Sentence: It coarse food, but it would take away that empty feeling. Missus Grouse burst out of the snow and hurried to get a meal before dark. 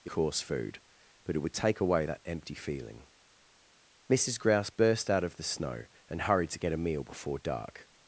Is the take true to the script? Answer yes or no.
yes